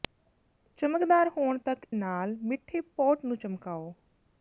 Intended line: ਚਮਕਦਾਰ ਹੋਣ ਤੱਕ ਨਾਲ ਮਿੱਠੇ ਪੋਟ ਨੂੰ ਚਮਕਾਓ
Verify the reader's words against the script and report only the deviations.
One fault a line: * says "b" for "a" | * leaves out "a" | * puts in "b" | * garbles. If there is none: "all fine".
all fine